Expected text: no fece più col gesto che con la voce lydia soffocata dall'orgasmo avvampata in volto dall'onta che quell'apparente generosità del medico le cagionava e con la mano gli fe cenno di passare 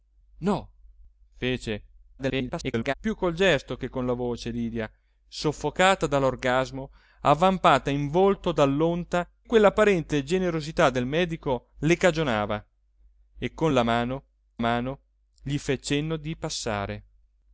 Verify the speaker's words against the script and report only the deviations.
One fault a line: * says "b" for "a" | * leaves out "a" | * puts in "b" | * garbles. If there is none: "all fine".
* garbles
* leaves out "che"
* puts in "mano"